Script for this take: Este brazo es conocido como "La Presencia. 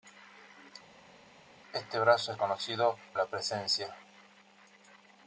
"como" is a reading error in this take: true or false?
true